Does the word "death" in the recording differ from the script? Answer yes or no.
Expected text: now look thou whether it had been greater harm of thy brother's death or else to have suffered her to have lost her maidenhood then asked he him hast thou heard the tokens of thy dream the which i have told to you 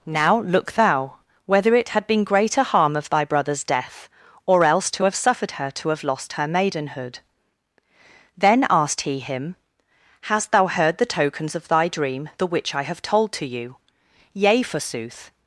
no